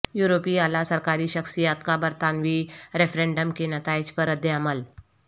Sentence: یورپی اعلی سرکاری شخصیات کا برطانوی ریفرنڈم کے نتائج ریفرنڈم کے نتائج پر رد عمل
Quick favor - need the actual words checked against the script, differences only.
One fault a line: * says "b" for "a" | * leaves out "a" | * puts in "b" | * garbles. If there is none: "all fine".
* leaves out "ریفرنڈم کے نتائج"